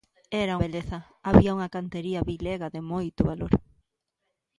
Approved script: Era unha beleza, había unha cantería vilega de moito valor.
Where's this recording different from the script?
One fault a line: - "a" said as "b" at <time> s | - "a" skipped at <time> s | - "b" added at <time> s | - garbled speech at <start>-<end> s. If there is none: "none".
- "unha" skipped at 0.6 s